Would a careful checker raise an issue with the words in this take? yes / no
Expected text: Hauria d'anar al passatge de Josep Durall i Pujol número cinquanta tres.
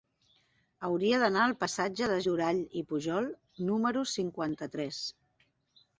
yes